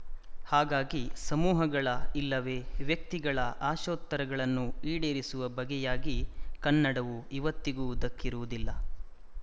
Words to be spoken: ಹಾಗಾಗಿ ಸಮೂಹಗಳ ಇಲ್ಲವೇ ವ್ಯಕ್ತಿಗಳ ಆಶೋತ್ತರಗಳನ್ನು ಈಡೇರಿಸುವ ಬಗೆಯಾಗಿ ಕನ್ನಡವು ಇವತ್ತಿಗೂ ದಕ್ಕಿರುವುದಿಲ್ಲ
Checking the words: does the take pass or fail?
pass